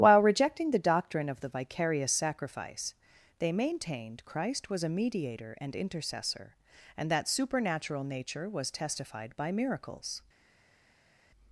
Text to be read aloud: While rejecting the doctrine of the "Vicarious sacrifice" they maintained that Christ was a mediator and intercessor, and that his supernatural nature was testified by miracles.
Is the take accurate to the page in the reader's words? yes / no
no